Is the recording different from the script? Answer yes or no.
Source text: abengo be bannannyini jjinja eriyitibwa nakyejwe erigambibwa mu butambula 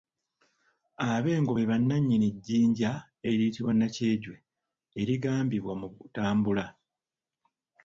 no